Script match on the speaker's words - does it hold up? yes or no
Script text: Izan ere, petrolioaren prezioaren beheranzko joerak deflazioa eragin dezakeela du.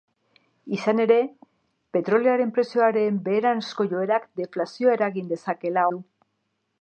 yes